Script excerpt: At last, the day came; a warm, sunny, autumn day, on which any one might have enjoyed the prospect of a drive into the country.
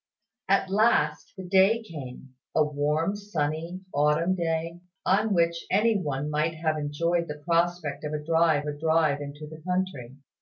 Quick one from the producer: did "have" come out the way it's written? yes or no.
yes